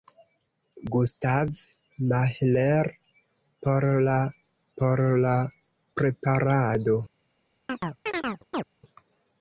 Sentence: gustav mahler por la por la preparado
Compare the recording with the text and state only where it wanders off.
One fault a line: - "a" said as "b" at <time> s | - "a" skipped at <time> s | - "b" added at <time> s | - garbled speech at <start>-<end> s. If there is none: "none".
none